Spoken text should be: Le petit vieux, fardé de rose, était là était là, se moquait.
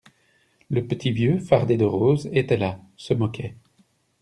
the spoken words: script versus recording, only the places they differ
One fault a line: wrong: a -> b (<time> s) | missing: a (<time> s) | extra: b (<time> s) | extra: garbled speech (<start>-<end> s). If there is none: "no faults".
missing: était là (2.8 s)